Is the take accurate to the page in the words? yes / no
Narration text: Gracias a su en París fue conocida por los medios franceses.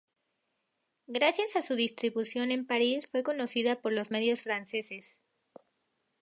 no